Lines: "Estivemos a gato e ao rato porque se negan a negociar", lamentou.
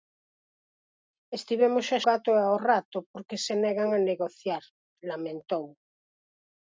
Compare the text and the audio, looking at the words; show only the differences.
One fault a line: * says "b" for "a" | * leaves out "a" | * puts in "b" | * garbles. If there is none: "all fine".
all fine